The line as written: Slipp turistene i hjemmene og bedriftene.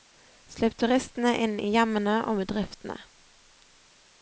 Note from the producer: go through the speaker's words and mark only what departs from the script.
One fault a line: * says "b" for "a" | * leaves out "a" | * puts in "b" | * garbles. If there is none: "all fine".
* puts in "inn"